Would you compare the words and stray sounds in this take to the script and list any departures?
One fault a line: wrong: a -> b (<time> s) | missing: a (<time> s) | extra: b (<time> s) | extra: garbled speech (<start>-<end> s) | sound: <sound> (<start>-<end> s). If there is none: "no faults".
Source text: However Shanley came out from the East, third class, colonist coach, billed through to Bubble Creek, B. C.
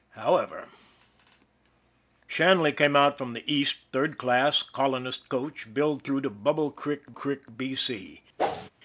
extra: Creek (7.1 s)
sound: whoosh (8.4-8.7 s)